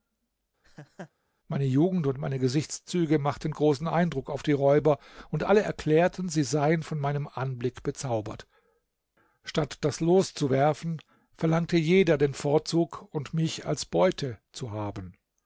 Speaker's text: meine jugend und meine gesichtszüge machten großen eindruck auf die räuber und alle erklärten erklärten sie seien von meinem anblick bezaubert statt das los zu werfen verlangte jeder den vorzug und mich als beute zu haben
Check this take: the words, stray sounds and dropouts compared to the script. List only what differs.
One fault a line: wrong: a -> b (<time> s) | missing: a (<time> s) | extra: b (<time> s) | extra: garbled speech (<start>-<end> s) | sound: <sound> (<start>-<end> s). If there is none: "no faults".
sound: laugh (0.6-1.1 s)
missing: erklärten (6.3 s)